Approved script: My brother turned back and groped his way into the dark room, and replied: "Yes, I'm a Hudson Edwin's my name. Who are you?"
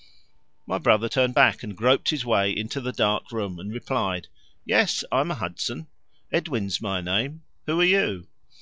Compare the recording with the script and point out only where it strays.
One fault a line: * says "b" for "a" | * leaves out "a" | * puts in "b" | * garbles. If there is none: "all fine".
all fine